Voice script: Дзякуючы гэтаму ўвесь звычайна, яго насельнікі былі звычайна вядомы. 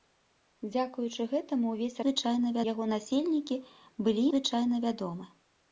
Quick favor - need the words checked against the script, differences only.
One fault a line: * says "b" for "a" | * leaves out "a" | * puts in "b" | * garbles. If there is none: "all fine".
all fine